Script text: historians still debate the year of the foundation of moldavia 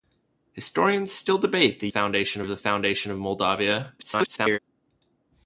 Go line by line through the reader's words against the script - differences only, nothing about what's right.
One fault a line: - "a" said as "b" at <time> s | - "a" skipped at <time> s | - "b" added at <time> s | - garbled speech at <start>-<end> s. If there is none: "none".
- "year" said as "foundation" at 1.9 s
- garbled speech at 4.0-4.6 s